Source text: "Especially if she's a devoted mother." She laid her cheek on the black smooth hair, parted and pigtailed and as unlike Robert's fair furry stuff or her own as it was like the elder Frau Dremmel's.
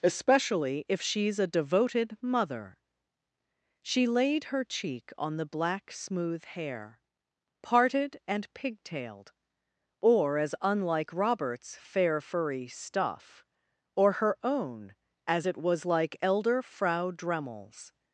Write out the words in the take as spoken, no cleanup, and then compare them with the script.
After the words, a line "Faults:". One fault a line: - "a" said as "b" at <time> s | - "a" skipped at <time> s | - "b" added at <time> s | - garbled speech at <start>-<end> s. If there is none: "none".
"Especially if she's a devoted mother." She laid her cheek on the black smooth hair, parted and pigtailed or as unlike Robert's fair furry stuff or her own as it was like elder Frau Dremmel's.
Faults:
- "and" said as "or" at 10.0 s
- "the" skipped at 16.2 s